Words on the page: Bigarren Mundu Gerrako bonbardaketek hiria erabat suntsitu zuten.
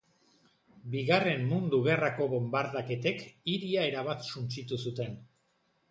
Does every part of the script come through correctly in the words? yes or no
yes